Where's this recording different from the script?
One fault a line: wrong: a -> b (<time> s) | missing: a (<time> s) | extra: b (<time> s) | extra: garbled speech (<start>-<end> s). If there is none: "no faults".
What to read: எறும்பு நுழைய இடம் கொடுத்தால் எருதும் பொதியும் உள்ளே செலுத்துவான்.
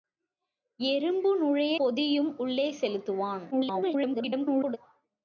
missing: இடம் கொடுத்தால் எருதும் (1.8 s)
extra: garbled speech (3.5-4.8 s)